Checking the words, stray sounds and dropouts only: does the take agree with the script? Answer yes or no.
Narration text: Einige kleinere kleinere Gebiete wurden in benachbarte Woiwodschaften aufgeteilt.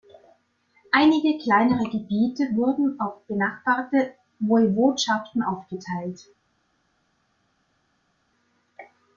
no